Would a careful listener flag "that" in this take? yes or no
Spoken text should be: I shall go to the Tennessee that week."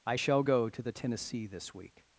yes